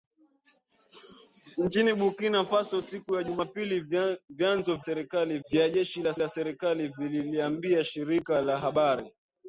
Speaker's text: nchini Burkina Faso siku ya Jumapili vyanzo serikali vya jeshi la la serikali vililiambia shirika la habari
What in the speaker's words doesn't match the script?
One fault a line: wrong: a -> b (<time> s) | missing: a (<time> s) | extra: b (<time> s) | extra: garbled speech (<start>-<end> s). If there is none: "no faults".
no faults